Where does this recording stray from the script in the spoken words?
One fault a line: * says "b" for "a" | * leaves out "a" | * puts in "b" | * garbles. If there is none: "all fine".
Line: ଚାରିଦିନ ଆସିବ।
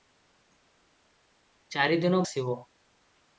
all fine